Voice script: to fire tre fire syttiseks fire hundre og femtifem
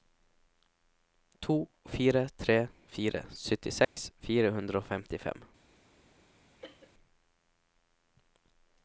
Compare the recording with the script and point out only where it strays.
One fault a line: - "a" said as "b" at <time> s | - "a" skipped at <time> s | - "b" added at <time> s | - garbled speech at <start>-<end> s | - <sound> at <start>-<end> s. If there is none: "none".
- dropout at 3.8-4.0 s
- cough at 6.6-6.9 s